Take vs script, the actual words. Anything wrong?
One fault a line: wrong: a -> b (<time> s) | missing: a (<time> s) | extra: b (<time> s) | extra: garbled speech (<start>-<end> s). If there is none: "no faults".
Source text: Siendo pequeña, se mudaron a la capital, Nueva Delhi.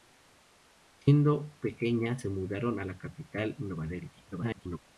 extra: garbled speech (4.3-4.8 s)